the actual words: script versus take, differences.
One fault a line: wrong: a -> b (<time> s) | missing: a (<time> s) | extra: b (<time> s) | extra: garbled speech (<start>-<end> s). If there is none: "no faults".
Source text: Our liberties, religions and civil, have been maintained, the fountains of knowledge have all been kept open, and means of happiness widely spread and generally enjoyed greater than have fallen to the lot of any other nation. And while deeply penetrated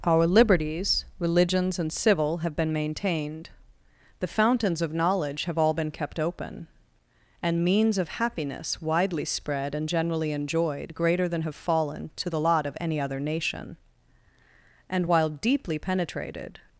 no faults